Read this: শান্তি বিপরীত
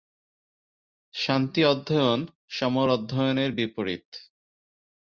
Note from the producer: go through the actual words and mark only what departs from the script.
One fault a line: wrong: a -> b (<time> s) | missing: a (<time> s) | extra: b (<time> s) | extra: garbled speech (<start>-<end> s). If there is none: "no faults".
extra: অধ্যয়ন সমর অধ্যয়নের (1.6 s)